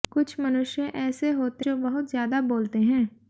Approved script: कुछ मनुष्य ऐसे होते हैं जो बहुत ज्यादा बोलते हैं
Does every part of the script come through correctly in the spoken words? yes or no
no